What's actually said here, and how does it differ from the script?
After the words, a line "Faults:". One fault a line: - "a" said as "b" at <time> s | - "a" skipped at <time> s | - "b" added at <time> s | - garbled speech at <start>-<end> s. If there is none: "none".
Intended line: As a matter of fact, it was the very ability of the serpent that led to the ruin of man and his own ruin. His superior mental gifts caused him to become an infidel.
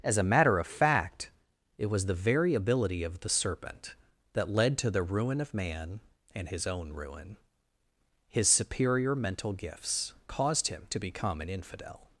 As a matter of fact, it was the very ability of the serpent that led to the ruin of man and his own ruin. His superior mental gifts caused him to become an infidel.
Faults:
none